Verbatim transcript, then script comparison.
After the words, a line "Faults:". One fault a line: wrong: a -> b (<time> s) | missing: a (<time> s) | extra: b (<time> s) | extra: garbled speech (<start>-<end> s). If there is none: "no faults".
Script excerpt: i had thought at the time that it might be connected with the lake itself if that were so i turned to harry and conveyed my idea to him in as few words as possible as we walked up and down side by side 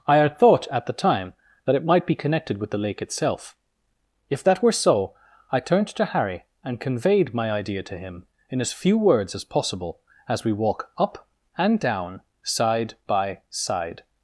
i had thought at the time that it might be connected with the lake itself if that were so i turned to harry and conveyed my idea to him in as few words as possible as we walk up and down side by side
Faults:
wrong: walked -> walk (10.5 s)